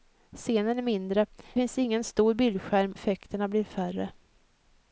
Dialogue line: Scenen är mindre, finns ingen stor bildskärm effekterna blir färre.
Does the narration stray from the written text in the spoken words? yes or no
no